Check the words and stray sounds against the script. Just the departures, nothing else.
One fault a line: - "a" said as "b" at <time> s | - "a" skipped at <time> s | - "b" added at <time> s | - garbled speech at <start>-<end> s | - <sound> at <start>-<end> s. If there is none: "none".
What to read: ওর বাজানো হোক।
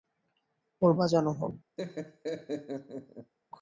- laugh at 1.8-3.3 s